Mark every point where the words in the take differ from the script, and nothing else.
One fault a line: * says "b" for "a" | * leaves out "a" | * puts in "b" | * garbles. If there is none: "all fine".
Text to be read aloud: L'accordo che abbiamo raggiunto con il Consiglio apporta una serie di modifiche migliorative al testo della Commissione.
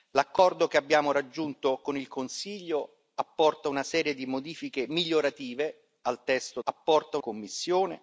* says "apporta" for "della"